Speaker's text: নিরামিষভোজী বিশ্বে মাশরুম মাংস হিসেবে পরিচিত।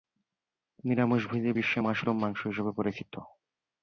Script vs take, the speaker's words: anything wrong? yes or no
no